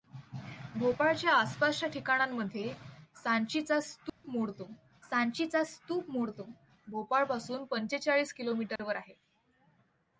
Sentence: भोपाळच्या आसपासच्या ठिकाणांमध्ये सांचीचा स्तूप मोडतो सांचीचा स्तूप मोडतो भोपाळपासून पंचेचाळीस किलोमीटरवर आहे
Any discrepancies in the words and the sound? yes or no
yes